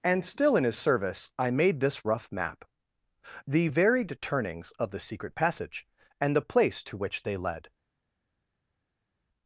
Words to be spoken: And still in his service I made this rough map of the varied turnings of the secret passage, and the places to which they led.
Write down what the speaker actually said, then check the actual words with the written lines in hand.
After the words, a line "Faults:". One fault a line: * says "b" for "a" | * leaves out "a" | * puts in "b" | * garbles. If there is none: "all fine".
And still in his service I made this rough map the varied turnings of the secret passage, and the place to which they led.
Faults:
* leaves out "of"
* says "place" for "places"